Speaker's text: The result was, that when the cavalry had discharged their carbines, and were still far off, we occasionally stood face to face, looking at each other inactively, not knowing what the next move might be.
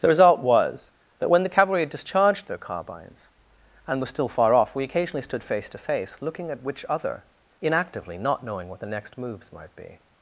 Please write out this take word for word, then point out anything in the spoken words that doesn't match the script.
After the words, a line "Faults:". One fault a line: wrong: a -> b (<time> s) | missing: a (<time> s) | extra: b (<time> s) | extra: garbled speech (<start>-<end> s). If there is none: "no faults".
The result was, that when the cavalry had discharged their carbines, and were still far off, we occasionally stood face to face, looking at which other inactively, not knowing what the next moves might be.
Faults:
wrong: each -> which (6.6 s)
wrong: move -> moves (9.2 s)